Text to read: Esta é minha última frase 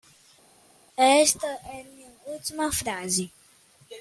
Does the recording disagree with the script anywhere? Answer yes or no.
no